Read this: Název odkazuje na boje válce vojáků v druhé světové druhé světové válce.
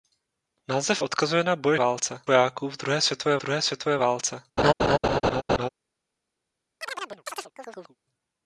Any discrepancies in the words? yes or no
no